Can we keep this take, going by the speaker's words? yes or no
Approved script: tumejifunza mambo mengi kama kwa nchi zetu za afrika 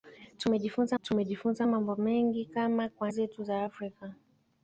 no